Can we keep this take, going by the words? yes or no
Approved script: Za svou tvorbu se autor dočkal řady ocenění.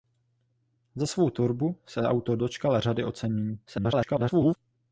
no